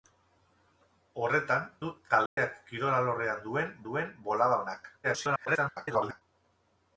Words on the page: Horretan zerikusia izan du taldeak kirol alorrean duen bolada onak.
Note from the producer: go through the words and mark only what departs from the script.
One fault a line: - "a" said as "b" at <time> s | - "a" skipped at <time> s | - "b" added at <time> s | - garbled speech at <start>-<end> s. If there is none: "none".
- "zerikusia izan" skipped at 1.7 s
- "duen" added at 3.9 s
- garbled speech at 5.0-6.2 s